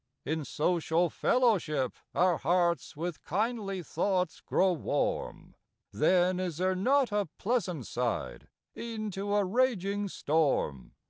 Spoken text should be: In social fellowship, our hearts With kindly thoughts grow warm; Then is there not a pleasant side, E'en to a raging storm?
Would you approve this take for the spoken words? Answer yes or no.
yes